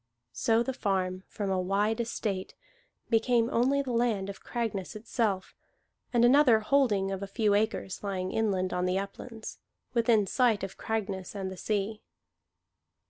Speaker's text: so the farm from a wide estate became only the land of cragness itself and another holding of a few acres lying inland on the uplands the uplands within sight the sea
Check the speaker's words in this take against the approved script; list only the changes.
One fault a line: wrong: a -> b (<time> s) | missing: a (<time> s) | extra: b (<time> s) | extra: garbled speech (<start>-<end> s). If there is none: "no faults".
wrong: the uplands within sight -> within sight of cragness and (9.9 s)